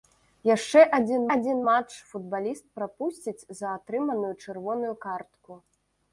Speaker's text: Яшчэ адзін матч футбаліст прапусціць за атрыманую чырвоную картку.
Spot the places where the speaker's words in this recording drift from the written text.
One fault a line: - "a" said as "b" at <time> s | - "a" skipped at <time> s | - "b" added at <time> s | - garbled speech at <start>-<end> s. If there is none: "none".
- "адзін" added at 1.3 s